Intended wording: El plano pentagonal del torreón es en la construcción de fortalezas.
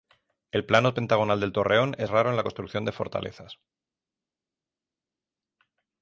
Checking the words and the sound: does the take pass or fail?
fail